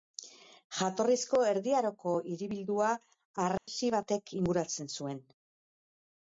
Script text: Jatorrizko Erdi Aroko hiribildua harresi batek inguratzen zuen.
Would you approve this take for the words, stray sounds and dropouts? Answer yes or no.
no